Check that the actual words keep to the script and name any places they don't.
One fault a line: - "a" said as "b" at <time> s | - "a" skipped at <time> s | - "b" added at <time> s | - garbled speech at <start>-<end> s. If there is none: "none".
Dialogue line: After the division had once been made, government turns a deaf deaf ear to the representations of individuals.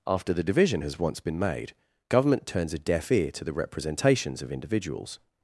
- "had" said as "has" at 0.8 s
- "deaf" skipped at 3.1 s